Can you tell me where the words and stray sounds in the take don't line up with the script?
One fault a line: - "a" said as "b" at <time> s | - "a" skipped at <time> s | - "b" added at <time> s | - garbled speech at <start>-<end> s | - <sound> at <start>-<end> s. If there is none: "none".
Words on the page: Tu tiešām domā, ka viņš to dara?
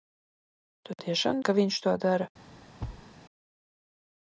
- "domā" skipped at 1.4 s
- thud at 2.8-3.1 s